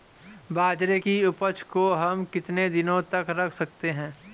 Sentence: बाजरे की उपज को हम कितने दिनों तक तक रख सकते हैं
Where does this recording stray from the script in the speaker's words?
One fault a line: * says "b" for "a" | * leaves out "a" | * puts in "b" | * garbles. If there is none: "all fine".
* leaves out "तक"